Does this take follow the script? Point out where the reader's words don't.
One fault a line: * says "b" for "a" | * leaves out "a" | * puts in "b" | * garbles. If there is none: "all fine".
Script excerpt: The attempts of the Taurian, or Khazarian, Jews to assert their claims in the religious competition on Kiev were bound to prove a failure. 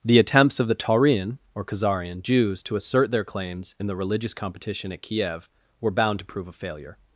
* says "at" for "on"